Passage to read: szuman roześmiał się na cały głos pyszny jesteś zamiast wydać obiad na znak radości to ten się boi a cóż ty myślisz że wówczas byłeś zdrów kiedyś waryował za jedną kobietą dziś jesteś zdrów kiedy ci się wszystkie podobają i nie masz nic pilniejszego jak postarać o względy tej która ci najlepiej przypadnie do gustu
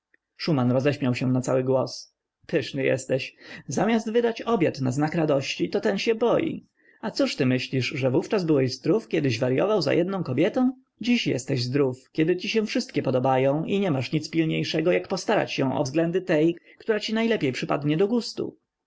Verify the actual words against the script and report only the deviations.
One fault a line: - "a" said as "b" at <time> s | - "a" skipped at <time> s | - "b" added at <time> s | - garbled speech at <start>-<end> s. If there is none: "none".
- "się" added at 15.5 s